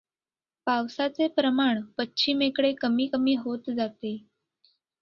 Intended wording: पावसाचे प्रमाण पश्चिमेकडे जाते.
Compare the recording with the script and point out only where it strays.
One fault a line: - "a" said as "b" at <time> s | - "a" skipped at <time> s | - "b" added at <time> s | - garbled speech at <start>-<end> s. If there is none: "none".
- "कमी कमी होत" added at 2.8 s